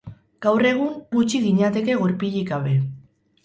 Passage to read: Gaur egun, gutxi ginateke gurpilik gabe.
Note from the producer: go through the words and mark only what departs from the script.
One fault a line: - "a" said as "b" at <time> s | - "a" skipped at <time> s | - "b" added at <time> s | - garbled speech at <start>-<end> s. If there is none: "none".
none